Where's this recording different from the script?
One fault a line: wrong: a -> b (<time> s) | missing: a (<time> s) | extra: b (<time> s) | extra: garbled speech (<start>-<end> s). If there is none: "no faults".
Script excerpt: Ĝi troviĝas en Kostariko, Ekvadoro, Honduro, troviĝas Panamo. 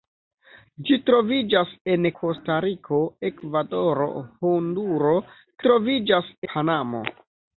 no faults